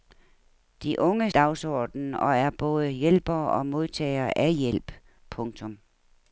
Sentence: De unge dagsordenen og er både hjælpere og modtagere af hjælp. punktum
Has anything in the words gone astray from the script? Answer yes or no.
no